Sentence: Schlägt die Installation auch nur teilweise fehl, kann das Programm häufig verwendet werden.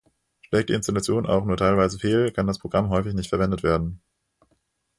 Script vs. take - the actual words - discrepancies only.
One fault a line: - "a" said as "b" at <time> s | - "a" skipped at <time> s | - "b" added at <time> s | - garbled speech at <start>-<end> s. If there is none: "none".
- "nicht" added at 3.1 s